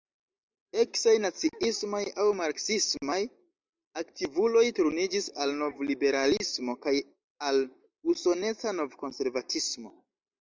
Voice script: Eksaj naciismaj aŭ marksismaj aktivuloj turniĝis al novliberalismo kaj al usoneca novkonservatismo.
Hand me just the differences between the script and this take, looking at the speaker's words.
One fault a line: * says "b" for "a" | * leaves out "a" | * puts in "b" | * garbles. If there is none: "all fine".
all fine